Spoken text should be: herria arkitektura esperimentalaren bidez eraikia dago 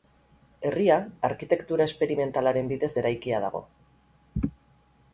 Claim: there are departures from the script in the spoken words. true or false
false